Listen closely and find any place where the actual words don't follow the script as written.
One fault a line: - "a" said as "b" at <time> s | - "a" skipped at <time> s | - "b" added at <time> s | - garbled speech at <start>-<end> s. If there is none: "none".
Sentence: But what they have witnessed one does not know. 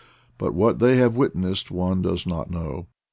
none